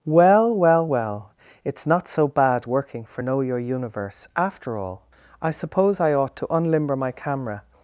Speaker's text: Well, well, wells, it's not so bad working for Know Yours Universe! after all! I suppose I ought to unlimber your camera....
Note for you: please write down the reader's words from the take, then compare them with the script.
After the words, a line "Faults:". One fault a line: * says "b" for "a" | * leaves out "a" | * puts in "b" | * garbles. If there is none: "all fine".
Well, well, well, it's not so bad working for Know Your Universe! after all! I suppose I ought to unlimber my camera....
Faults:
* says "well" for "wells"
* says "Your" for "Yours"
* says "my" for "your"